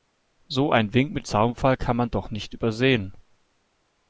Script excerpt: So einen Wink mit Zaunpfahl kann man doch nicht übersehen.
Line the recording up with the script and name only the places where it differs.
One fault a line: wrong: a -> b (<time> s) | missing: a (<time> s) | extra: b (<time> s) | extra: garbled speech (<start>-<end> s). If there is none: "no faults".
no faults